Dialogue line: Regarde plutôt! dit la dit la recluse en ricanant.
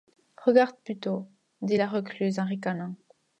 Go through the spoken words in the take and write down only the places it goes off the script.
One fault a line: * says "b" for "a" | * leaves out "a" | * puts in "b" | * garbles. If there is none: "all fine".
* leaves out "dit la"